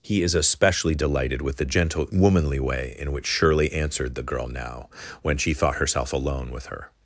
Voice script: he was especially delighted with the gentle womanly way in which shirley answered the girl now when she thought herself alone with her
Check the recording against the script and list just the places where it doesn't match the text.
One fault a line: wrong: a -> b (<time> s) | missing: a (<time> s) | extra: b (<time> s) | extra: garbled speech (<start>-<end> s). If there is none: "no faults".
wrong: was -> is (0.2 s)